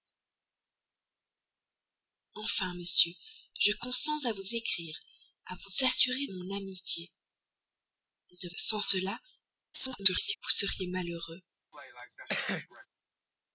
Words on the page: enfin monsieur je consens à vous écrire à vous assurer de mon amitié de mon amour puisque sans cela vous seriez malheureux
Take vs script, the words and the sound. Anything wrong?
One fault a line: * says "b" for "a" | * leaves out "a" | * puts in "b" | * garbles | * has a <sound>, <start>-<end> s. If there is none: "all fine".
* leaves out "de"
* leaves out "mon amour puisque"
* garbles
* has a cough, 11.7-12.9 s